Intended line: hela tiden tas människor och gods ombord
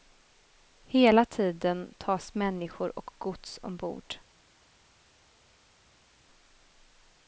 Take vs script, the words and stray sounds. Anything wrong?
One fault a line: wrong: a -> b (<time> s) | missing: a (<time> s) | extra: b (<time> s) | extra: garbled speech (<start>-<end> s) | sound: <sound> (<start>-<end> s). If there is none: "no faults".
no faults